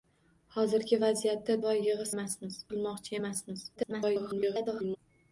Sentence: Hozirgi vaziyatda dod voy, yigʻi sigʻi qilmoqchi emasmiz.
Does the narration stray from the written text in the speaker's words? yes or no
yes